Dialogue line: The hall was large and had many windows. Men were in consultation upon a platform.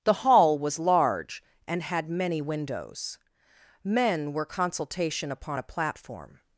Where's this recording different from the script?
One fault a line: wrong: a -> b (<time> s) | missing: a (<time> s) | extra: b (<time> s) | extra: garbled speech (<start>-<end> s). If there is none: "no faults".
missing: in (4.5 s)